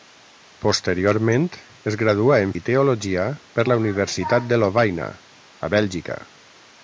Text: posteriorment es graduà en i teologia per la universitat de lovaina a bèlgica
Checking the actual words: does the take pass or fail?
pass